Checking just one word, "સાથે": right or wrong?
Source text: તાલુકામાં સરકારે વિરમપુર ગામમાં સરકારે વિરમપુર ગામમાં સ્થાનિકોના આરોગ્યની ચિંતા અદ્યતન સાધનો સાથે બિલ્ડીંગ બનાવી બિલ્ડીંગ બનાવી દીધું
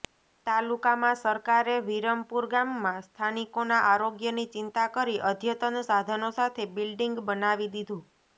right